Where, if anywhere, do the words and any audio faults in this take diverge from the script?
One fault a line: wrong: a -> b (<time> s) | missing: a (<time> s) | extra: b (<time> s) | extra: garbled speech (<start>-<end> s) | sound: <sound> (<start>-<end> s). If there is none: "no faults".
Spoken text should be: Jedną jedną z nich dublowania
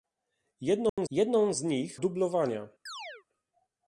sound: dropout (0.9-1.0 s)
sound: chirp (2.9-3.2 s)